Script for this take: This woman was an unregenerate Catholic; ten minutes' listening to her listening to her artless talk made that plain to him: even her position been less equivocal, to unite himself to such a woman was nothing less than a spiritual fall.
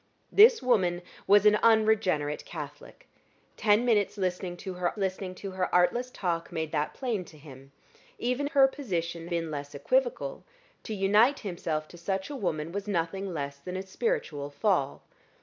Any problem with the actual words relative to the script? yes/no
no